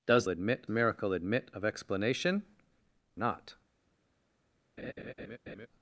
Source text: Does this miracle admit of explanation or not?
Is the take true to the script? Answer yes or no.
no